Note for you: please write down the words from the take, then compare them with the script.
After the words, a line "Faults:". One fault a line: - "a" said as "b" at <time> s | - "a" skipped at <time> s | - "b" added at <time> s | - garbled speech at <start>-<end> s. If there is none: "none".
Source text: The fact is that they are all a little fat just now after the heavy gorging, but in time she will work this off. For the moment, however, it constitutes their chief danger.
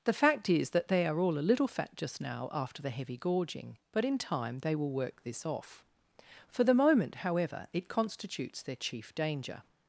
The fact is that they are all a little fat just now after the heavy gorging, but in time they will work this off. For the moment, however, it constitutes their chief danger.
Faults:
- "she" said as "they" at 4.6 s